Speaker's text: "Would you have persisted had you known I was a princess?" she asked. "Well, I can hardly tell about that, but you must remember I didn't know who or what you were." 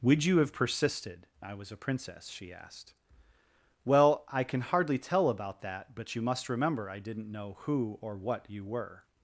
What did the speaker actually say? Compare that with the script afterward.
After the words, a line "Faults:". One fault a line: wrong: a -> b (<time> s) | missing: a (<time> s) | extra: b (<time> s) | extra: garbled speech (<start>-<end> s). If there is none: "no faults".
"Would you have persisted I was a princess?" she asked. "Well, I can hardly tell about that, but you must remember I didn't know who or what you were."
Faults:
missing: had you known (1.3 s)